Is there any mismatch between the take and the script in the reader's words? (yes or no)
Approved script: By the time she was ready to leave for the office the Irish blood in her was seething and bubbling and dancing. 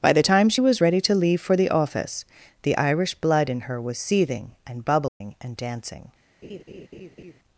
no